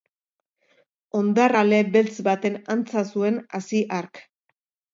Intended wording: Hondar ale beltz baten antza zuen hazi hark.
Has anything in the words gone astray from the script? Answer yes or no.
no